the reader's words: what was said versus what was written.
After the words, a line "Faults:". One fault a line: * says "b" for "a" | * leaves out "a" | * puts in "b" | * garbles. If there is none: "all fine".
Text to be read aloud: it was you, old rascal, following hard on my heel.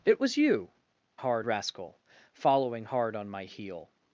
it was you, hard rascal, following hard on my heel.
Faults:
* says "hard" for "old"